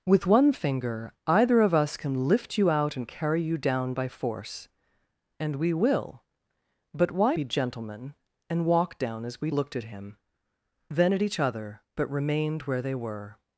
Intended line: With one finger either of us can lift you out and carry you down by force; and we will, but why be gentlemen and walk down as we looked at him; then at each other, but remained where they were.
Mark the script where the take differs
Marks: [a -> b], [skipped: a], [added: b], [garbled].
With one finger either of us can lift you out and carry you down by force; and we will, but why be gentlemen and walk down as we looked at him; then at each other, but remained where they were.